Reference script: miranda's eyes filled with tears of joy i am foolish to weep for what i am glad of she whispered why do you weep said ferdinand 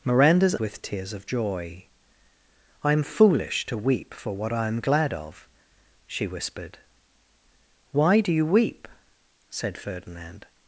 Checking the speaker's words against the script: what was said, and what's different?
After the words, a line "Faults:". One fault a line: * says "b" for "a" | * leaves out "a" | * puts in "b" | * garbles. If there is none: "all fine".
miranda's with tears of joy i am foolish to weep for what i am glad of she whispered why do you weep said ferdinand
Faults:
* leaves out "eyes filled"